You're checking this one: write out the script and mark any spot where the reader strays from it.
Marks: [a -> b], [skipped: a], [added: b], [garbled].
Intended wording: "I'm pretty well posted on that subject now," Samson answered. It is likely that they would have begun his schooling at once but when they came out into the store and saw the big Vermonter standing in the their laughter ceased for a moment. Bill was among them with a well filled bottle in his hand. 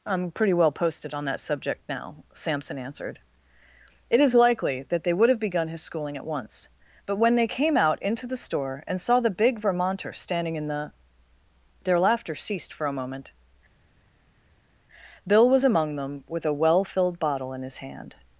"I'm pretty well posted on that subject now," Samson answered. It is likely that they would have begun his schooling at once but when they came out into the store and saw the big Vermonter standing in the their laughter ceased for a moment. Bill was among them with a well filled bottle in his hand.